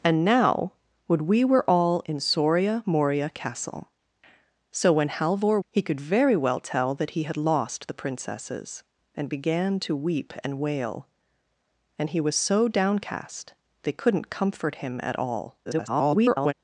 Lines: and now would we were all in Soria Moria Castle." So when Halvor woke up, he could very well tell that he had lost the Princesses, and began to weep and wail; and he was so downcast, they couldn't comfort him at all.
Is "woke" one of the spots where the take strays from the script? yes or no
yes